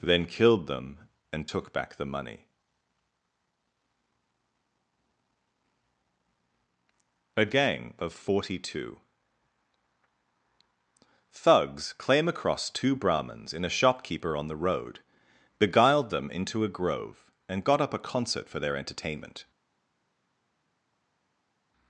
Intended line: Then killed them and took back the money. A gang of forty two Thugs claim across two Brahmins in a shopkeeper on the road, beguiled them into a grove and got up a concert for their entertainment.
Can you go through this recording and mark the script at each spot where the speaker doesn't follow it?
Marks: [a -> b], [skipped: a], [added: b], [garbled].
Then killed them and took back the money. A gang of forty two Thugs claim across two Brahmins in a shopkeeper on the road, beguiled them into a grove and got up a concert for their entertainment.